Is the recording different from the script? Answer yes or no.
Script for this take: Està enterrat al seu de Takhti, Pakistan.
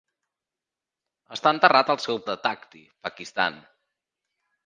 no